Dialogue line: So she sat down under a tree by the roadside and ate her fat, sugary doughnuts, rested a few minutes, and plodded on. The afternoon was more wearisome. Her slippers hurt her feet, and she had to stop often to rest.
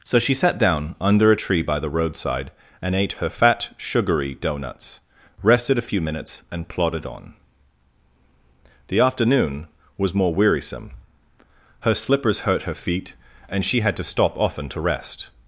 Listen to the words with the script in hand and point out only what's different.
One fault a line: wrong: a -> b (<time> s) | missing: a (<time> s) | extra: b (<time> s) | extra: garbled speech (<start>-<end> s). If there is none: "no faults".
no faults